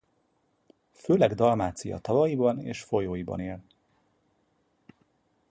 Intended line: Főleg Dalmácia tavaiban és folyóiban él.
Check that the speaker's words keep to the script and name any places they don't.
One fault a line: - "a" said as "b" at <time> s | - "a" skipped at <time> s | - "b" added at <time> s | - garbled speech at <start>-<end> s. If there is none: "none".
none